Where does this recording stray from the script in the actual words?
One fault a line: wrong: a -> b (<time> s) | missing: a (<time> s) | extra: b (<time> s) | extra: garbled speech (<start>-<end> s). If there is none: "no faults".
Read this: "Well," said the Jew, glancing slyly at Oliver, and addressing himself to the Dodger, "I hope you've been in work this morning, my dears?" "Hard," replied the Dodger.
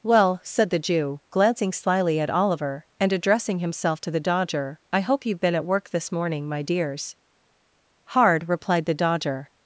wrong: in -> at (5.5 s)